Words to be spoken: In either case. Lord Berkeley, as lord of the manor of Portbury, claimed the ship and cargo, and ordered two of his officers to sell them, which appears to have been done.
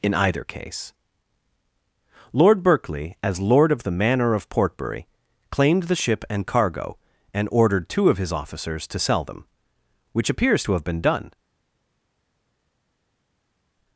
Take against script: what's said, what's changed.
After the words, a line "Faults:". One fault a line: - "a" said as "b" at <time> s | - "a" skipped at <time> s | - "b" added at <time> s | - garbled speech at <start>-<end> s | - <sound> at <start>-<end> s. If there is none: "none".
In either case. Lord Berkeley, as lord of the manor of Portbury, claimed the ship and cargo, and ordered two of his officers to sell them, which appears to have been done.
Faults:
none